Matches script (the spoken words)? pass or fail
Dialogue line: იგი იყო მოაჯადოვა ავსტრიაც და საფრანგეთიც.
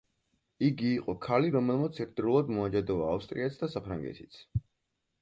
fail